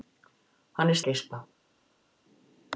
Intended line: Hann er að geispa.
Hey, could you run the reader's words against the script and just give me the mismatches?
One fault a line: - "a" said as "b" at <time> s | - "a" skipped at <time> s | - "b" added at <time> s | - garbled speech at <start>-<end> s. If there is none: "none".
none